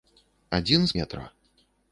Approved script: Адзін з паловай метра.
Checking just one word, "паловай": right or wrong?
wrong